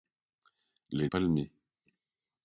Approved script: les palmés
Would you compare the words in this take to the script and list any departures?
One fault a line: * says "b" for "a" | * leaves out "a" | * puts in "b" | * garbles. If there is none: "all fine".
all fine